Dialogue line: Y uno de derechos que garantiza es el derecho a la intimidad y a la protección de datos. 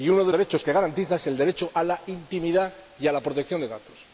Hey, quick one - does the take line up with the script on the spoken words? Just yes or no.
yes